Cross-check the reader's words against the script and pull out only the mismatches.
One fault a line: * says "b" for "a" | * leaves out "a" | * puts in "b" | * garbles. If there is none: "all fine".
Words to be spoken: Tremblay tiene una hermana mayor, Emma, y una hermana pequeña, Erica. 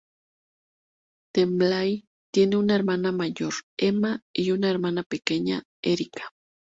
all fine